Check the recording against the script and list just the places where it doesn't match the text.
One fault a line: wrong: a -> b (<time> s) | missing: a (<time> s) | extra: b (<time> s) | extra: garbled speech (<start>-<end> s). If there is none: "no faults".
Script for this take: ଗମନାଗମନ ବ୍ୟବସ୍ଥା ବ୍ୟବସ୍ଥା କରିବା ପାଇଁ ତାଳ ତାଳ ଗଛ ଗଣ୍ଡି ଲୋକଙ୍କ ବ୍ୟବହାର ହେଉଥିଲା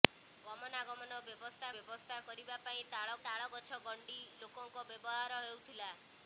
no faults